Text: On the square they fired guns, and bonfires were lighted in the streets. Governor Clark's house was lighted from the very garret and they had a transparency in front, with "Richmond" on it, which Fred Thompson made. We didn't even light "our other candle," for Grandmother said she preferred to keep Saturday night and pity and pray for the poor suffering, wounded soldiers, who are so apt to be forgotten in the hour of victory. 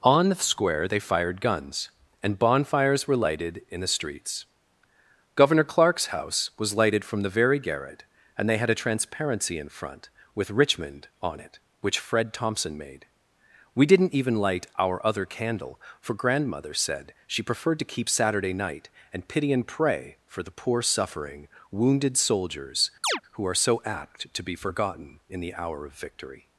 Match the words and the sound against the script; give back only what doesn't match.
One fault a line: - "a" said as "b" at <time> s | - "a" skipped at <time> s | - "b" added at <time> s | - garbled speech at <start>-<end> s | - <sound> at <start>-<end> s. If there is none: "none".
- chirp at 23.0-23.2 s